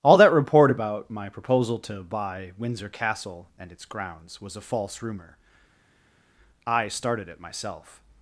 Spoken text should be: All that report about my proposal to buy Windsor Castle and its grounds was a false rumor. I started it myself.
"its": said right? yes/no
yes